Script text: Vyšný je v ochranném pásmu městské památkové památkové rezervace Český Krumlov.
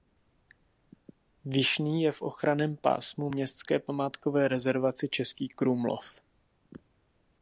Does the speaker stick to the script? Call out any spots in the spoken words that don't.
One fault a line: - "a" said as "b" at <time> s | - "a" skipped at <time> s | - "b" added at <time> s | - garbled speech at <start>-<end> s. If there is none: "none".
- "památkové" skipped at 4.5 s